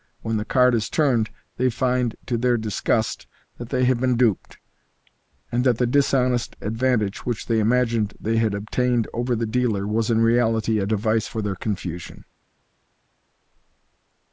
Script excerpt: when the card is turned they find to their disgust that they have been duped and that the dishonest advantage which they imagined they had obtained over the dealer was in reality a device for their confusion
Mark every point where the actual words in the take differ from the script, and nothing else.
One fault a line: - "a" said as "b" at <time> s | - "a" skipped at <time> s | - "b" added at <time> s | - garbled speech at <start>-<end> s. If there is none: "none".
none